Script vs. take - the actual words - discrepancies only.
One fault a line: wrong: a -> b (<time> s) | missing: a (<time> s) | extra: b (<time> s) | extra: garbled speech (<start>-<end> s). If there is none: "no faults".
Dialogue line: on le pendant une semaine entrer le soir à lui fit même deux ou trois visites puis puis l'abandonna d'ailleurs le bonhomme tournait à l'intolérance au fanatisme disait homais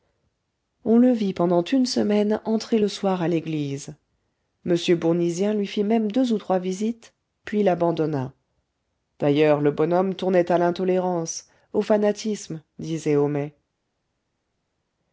extra: vit (1.1 s)
extra: l'église m bournisien (3.3 s)
missing: puis (7.6 s)